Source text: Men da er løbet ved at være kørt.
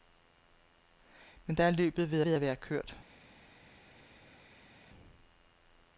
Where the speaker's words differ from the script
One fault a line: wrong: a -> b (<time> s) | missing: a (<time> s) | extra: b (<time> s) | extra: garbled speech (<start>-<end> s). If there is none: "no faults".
extra: ved (2.2 s)